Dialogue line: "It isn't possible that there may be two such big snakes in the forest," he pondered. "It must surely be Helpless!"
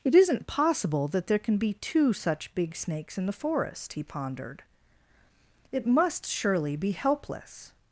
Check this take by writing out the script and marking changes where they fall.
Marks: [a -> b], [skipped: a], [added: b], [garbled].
"It isn't possible that there [may -> can] be two such big snakes in the forest," he pondered. "It must surely be Helpless!"